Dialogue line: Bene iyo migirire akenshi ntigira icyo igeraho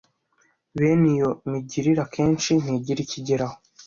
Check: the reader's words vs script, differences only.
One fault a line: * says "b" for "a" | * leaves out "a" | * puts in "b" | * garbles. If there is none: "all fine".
all fine